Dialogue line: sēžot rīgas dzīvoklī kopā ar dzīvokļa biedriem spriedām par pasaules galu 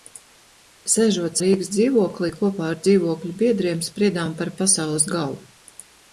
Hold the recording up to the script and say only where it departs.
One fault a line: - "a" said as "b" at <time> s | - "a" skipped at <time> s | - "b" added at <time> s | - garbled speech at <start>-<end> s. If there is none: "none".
none